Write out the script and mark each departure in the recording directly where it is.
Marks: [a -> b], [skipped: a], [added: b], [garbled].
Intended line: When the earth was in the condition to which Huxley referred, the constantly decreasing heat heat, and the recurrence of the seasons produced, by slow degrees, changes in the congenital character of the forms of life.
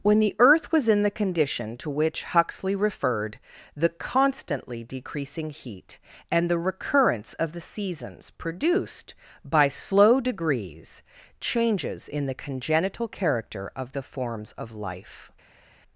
When the earth was in the condition to which Huxley referred, the constantly decreasing heat [skipped: heat,] and the recurrence of the seasons produced, by slow degrees, changes in the congenital character of the forms of life.